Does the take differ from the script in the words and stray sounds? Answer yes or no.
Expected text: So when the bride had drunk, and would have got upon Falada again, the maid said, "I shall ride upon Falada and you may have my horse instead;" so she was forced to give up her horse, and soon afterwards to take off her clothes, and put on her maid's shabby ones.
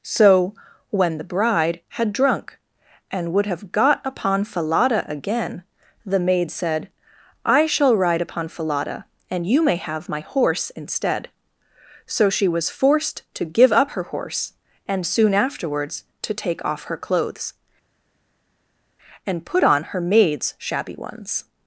no